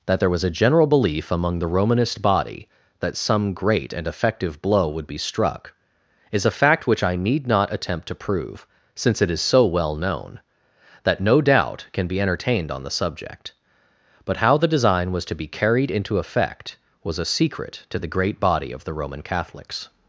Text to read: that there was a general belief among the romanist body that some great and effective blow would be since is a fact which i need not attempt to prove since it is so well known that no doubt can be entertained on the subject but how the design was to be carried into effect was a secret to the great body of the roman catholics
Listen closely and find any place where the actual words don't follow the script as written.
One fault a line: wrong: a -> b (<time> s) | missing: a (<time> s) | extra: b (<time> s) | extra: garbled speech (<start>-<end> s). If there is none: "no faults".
wrong: since -> struck (5.2 s)